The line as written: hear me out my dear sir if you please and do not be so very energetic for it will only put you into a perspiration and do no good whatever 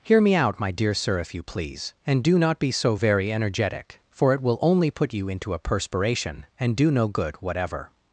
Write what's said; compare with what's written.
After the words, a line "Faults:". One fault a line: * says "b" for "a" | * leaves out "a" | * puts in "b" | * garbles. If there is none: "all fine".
hear me out my dear sir if you please and do not be so very energetic for it will only put you into a perspiration and do no good whatever
Faults:
all fine